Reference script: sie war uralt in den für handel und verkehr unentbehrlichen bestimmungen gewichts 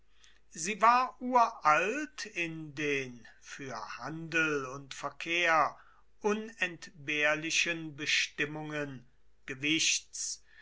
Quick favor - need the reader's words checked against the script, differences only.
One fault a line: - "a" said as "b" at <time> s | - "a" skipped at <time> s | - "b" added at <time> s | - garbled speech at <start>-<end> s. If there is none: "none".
none